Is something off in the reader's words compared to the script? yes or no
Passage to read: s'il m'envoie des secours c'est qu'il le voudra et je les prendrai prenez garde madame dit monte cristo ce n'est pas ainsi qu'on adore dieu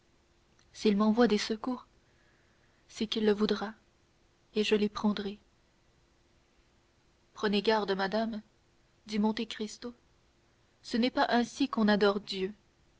no